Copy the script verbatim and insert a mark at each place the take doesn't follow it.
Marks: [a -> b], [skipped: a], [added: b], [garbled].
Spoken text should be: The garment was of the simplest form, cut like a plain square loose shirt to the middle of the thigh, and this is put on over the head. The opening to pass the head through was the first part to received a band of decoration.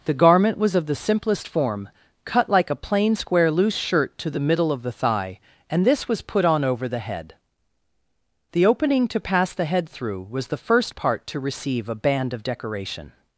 The garment was of the simplest form, cut like a plain square loose shirt to the middle of the thigh, and this [is -> was] put on over the head. The opening to pass the head through was the first part to [received -> receive] a band of decoration.